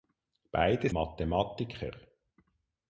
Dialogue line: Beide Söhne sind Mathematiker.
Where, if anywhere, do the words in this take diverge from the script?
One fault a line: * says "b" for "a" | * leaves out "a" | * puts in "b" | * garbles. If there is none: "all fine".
* leaves out "Söhne sind"